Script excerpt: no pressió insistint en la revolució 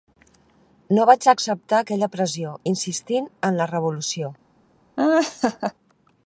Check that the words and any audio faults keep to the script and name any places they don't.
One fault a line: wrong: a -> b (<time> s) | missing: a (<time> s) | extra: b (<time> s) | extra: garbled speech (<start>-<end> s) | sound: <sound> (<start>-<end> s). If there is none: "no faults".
extra: vaig acceptar aquella (1.1 s)
sound: laugh (5.0-5.7 s)